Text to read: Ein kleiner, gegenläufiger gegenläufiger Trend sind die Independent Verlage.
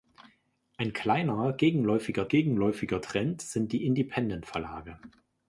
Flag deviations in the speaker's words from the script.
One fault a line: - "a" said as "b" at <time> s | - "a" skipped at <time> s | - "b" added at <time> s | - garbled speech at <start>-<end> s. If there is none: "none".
none